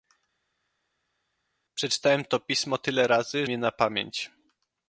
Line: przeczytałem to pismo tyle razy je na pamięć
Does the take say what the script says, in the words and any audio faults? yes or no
yes